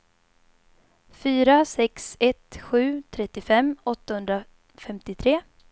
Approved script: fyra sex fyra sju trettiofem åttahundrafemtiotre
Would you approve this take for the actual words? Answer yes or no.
no